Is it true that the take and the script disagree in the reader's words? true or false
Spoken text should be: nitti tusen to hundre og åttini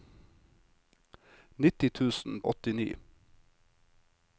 true